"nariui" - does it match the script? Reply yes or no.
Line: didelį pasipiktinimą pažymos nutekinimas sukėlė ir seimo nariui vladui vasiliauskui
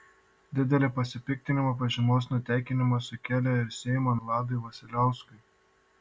no